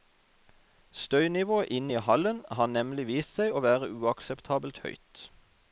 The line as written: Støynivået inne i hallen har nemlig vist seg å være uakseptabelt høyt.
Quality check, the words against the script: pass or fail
pass